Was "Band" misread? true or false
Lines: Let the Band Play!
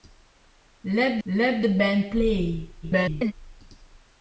false